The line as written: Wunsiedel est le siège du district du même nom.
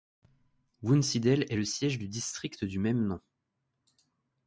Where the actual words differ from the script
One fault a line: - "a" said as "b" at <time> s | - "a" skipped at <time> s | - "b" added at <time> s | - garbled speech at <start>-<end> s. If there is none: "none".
none